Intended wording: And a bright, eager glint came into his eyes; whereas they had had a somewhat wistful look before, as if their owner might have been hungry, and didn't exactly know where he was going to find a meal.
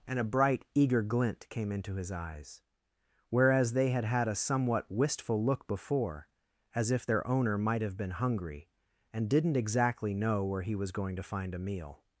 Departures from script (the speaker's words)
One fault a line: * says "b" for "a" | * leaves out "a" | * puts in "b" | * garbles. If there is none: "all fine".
all fine